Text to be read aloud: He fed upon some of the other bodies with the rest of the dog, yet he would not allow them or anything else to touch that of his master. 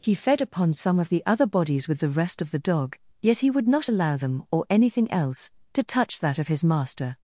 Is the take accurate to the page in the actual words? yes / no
yes